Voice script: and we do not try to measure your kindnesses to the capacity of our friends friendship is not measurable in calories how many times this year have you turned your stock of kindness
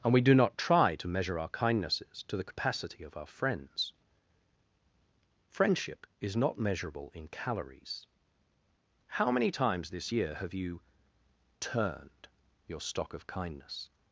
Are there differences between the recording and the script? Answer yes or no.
yes